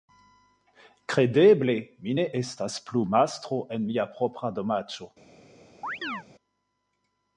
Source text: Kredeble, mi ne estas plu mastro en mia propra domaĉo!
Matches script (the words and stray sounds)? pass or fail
fail